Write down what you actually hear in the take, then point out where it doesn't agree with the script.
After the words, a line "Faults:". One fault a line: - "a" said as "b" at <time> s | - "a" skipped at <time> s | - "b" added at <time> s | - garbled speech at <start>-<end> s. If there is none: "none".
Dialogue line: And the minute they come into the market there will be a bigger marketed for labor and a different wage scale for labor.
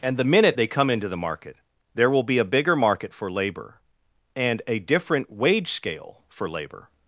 And the minute they come into the market there will be a bigger market for labor and a different wage scale for labor.
Faults:
- "marketed" said as "market" at 2.8 s